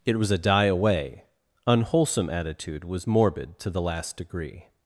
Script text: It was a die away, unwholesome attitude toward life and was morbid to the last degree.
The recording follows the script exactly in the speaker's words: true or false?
false